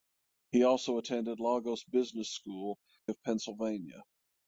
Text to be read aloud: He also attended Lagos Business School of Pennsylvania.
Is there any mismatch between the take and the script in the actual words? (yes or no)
no